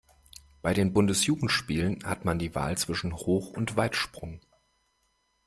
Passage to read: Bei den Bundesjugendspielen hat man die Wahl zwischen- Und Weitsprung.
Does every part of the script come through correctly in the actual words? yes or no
no